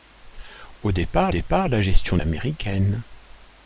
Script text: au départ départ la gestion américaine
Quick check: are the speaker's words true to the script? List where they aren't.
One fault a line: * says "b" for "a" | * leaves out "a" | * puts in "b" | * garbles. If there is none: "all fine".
all fine